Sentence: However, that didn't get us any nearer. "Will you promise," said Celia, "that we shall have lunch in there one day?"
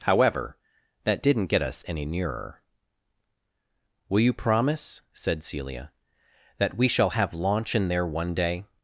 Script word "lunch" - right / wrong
wrong